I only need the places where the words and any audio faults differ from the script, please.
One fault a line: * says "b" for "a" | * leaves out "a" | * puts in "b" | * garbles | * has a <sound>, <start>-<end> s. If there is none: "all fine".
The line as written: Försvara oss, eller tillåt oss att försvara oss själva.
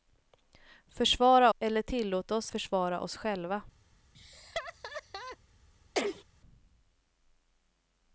* leaves out "oss"
* leaves out "att"
* has a laugh, 4.1-5.4 s
* has a sneeze, 5.9-6.2 s